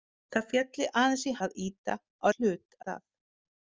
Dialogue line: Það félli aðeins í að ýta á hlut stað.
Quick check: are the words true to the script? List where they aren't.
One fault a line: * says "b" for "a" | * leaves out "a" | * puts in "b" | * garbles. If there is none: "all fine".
all fine